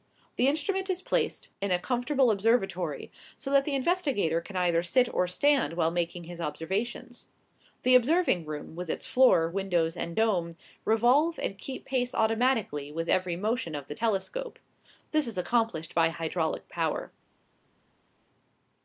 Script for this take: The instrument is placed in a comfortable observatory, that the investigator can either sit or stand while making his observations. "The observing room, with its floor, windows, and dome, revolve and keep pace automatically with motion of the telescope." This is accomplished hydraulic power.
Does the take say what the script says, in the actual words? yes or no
no